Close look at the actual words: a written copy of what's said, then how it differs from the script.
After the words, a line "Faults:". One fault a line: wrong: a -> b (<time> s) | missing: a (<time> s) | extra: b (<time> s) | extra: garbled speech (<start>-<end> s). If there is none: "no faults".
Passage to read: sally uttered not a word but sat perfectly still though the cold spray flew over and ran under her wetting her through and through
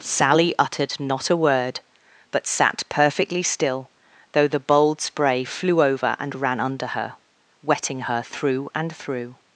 sally uttered not a word but sat perfectly still though the bold spray flew over and ran under her wetting her through and through
Faults:
wrong: cold -> bold (4.6 s)